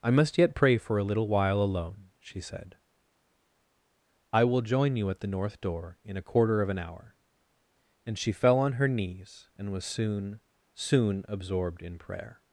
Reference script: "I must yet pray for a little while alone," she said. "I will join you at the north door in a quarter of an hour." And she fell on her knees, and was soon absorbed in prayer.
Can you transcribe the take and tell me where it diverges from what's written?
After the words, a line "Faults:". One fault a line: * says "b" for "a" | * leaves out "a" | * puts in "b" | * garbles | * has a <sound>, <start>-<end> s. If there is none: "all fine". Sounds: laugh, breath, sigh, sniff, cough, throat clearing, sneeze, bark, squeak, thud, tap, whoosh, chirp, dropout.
"I must yet pray for a little while alone," she said. "I will join you at the north door in a quarter of an hour." And she fell on her knees, and was soon soon absorbed in prayer.
Faults:
* puts in "soon"